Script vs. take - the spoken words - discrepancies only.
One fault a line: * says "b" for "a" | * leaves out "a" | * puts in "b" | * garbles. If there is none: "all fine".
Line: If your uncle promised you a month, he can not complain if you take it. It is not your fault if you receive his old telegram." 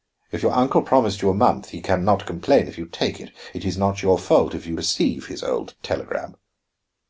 all fine